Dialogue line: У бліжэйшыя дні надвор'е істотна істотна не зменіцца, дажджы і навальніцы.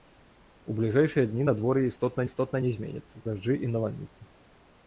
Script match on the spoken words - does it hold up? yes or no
yes